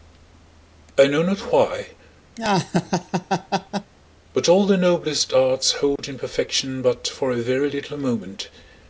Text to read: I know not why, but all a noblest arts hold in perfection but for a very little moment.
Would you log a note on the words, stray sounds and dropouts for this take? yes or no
yes